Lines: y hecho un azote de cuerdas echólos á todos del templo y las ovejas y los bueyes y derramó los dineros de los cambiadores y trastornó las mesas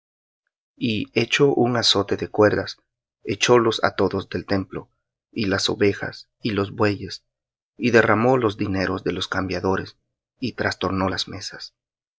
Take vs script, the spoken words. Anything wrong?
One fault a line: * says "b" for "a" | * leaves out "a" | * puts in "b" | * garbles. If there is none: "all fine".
all fine